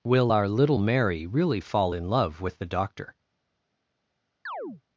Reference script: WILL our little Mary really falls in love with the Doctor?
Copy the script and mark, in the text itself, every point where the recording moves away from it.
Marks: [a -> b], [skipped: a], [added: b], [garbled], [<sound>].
WILL our little Mary really [falls -> fall] in love with the Doctor? [chirp]